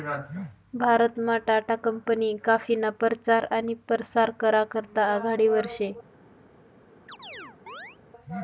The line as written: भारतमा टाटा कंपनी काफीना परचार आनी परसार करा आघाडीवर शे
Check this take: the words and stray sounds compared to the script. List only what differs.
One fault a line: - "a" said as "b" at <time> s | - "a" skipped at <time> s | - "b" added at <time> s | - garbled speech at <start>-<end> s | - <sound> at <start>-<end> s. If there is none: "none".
- "करता" added at 4.7 s
- chirp at 7.1-8.0 s